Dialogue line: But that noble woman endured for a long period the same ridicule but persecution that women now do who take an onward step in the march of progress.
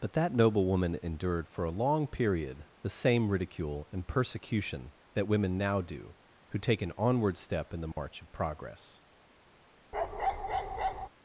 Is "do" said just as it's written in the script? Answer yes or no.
yes